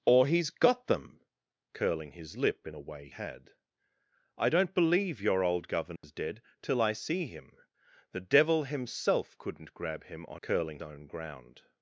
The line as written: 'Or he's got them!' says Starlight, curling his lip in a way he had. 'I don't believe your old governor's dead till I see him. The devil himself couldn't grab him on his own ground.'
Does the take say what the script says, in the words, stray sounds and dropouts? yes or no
no